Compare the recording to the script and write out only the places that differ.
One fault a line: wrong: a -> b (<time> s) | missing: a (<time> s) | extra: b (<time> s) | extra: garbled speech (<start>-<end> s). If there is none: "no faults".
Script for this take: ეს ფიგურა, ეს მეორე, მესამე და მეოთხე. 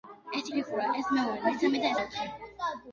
no faults